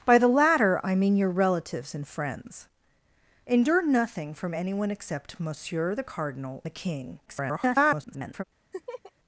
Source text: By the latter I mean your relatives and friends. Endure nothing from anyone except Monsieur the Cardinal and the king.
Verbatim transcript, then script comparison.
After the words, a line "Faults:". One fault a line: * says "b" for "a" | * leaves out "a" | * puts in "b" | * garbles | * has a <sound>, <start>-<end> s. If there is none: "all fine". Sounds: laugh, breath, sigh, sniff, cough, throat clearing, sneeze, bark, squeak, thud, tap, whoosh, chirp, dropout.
By the latter I mean your relatives and friends. Endure nothing from anyone except Monsieur the Cardinal the king. [garbled]
Faults:
* leaves out "and"
* garbles
* has a laugh, 8.7-9.1 s